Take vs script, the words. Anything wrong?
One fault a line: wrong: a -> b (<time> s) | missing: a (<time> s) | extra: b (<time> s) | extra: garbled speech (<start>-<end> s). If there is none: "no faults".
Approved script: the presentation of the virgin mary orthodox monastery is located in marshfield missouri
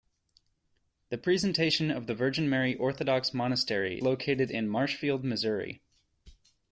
missing: is (4.0 s)